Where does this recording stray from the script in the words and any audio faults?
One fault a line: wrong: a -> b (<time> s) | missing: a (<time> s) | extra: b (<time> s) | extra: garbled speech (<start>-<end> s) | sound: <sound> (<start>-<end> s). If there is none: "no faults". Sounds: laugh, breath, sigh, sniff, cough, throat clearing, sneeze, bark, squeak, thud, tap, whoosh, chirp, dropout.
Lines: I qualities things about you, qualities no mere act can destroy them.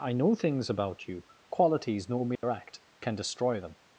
wrong: qualities -> know (0.1 s)
sound: dropout (2.4-2.4 s)